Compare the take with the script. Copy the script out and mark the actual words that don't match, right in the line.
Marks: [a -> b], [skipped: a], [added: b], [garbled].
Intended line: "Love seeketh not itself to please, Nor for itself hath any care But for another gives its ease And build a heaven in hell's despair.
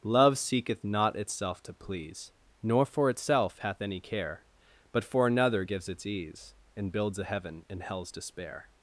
"Love seeketh not itself to please, Nor for itself hath any care But for another gives its ease And [build -> builds] a heaven in hell's despair.